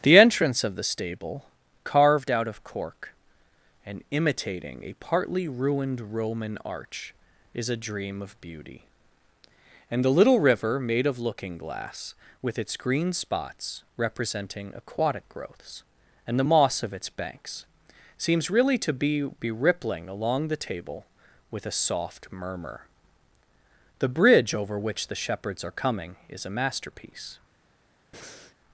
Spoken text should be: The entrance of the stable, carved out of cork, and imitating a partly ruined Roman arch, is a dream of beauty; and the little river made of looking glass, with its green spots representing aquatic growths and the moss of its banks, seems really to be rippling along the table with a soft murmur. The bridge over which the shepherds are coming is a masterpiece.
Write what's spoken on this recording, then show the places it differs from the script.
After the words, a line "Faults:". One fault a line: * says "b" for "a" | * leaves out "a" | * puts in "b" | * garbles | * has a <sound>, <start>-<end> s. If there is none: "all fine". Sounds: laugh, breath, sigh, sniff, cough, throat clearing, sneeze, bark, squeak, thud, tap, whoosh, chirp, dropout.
The entrance of the stable, carved out of cork, and imitating a partly ruined Roman arch, is a dream of beauty; and the little river made of looking glass, with its green spots representing aquatic growths and the moss of its banks, seems really to be be rippling along the table with a soft murmur. The bridge over which the shepherds are coming is a masterpiece.
Faults:
* puts in "be"
* has a breath, 28.1-28.6 s